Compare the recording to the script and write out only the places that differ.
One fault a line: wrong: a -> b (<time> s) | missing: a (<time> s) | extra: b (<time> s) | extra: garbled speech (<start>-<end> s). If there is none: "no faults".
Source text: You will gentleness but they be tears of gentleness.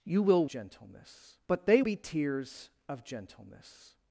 no faults